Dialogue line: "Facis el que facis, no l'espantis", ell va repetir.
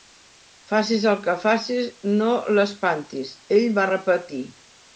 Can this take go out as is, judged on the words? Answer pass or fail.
pass